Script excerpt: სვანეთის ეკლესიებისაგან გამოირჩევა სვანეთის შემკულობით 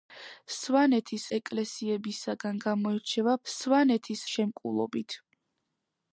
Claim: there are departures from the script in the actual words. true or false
false